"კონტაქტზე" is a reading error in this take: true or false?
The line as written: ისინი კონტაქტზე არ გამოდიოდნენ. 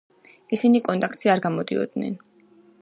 false